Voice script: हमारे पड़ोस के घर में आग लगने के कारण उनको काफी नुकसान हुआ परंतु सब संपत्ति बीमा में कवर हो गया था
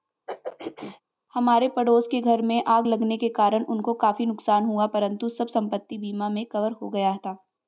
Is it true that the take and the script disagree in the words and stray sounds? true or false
true